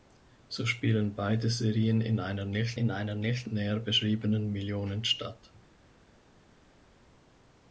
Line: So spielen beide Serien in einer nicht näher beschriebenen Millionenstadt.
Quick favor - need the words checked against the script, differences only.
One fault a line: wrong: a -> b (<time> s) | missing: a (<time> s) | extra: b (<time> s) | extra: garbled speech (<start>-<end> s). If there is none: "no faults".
extra: in einer nicht (2.7 s)